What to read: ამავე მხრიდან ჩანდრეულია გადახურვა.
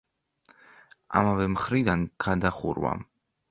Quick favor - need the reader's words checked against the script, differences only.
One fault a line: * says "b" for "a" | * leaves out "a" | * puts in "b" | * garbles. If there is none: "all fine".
* leaves out "ჩანდრეულია"